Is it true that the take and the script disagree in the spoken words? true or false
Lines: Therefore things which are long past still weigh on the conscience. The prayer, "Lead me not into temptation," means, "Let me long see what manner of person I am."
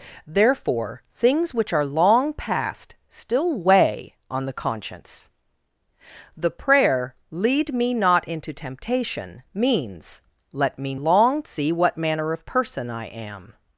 false